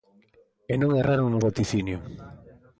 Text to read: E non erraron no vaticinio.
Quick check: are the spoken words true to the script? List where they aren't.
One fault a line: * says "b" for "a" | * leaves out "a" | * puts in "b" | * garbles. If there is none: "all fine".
all fine